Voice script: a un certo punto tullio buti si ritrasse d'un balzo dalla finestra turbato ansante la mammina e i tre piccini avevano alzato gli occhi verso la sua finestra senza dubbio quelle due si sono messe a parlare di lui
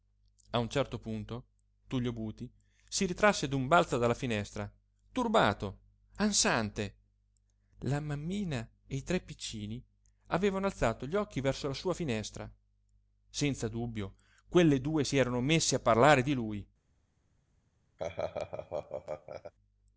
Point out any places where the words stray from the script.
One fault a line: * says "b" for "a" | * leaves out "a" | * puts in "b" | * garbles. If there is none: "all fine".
* says "erano" for "sono"